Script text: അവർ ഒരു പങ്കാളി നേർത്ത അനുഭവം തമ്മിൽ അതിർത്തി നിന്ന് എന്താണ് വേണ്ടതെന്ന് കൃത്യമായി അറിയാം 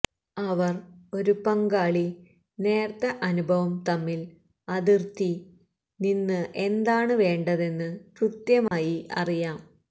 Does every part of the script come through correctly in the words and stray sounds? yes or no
no